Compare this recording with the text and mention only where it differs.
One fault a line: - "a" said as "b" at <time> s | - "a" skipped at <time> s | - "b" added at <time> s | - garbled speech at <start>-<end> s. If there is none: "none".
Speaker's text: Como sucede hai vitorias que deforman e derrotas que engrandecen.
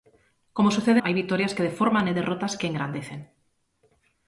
none